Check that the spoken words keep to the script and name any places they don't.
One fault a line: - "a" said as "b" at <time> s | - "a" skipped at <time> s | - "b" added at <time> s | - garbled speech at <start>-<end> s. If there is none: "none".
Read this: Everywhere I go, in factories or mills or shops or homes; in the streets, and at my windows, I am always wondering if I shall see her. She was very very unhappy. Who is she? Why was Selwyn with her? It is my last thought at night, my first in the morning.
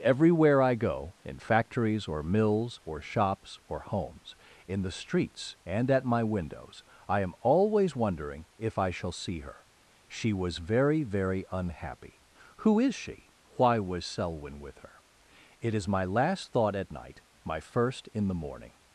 none